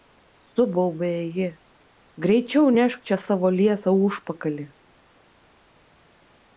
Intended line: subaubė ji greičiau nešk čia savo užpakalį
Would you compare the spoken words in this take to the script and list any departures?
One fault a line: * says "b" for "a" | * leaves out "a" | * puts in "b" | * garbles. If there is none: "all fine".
* puts in "liesą"